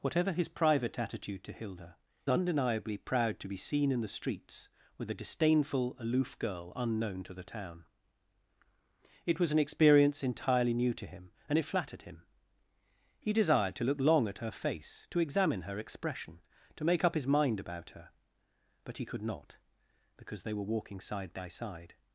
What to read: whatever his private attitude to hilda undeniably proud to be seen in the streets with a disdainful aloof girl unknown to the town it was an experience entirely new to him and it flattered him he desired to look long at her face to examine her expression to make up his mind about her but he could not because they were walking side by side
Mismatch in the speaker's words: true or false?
false